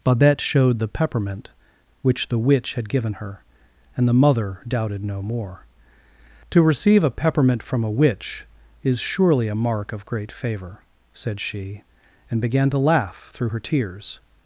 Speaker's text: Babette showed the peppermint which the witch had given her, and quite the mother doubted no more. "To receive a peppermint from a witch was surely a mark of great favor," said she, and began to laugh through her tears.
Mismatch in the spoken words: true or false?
true